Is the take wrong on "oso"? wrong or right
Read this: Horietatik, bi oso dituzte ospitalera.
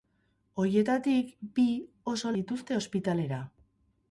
right